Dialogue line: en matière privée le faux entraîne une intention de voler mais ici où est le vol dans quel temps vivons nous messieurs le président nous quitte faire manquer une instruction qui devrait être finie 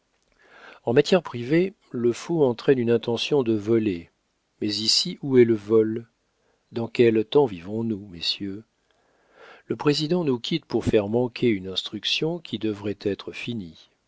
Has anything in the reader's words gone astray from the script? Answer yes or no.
yes